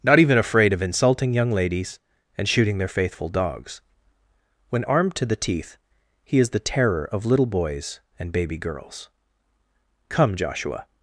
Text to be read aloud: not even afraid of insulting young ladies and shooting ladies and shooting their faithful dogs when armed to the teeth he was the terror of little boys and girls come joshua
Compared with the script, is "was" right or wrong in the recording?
wrong